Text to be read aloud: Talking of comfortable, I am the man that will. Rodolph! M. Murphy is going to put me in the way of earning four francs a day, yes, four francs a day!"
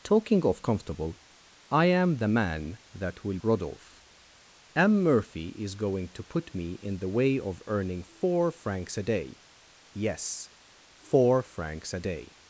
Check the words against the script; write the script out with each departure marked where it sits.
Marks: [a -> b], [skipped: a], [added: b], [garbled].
Talking of comfortable, I am the man that will. Rodolph! M. Murphy is going to put me in the way of earning four francs a day, yes, four francs a day!"